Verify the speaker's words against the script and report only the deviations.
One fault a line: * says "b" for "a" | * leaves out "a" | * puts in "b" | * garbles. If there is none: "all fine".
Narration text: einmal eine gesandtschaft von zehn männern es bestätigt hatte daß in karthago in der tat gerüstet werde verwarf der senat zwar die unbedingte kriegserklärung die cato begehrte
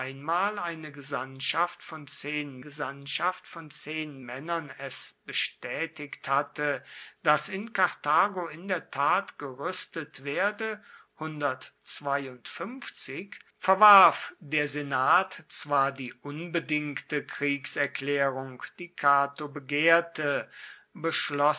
* puts in "gesandtschaft von zehn"